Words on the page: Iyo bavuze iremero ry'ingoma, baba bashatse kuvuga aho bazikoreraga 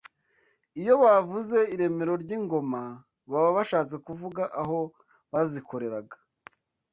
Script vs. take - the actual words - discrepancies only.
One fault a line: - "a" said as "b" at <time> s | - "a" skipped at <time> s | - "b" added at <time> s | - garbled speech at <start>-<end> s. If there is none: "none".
none